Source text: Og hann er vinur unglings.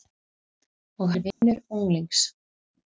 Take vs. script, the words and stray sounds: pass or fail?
fail